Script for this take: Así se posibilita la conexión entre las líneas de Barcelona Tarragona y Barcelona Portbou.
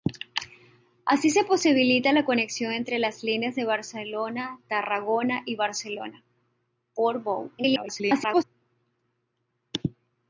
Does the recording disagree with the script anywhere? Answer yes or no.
yes